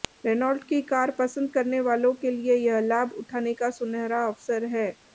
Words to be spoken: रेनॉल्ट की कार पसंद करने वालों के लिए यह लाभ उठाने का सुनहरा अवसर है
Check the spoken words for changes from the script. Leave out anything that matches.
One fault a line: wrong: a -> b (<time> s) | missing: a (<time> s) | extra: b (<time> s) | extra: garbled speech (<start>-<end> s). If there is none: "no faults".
no faults